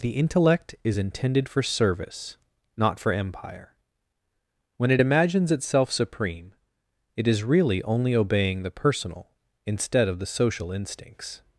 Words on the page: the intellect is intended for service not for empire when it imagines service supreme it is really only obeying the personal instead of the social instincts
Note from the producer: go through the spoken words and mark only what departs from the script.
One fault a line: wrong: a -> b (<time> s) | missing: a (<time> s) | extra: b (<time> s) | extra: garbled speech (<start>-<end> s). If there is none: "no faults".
wrong: service -> itself (5.5 s)